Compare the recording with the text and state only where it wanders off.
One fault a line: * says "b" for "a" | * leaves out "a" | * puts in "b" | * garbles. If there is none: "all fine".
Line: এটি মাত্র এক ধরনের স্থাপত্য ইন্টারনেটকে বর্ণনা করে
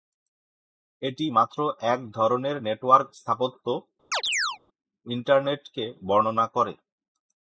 * puts in "নেটওয়ার্ক"